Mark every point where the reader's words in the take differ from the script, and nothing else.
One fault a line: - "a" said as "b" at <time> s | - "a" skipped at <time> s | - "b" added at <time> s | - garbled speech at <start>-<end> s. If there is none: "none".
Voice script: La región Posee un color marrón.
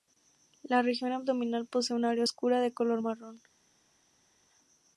- "abdominal" added at 1.1 s
- "área oscura de" added at 2.0 s